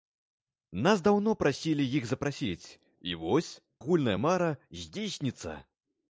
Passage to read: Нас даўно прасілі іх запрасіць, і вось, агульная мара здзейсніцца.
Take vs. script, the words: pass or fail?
pass